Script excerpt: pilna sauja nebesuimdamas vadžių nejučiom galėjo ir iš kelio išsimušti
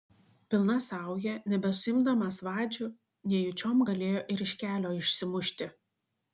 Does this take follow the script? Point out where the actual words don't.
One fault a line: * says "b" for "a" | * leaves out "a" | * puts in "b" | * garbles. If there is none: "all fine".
all fine